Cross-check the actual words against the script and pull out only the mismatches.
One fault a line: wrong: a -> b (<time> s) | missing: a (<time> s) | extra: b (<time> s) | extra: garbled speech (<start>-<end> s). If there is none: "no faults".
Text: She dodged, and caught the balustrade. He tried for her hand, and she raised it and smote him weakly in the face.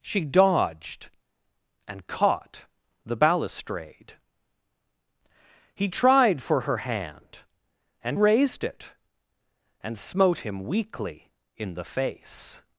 missing: she (8.2 s)